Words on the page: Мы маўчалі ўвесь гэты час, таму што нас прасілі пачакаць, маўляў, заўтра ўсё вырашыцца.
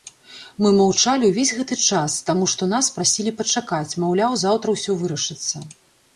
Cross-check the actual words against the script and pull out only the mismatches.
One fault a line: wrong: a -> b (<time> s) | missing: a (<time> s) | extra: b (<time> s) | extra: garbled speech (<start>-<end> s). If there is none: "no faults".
no faults